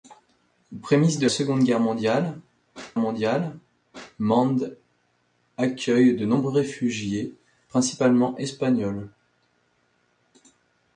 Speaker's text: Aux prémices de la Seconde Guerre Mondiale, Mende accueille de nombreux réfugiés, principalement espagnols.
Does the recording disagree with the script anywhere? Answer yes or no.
yes